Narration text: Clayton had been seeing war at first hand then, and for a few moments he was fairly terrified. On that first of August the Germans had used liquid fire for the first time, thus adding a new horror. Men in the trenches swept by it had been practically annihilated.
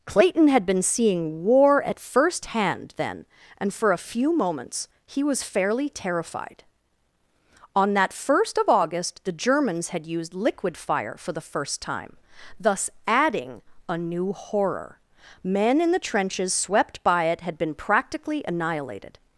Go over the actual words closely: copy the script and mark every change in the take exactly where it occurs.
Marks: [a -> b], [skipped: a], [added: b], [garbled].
Clayton had been seeing war at first hand then, and for a few moments he was fairly terrified. On that first of August the Germans had used liquid fire for the first time, thus adding a new horror. Men in the trenches swept by it had been practically annihilated.